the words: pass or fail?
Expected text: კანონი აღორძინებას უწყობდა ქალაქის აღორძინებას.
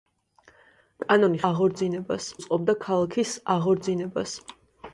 pass